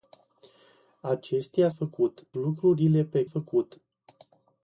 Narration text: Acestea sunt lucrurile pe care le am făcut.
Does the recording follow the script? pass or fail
fail